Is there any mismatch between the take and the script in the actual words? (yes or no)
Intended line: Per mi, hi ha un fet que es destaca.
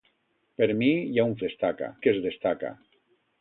yes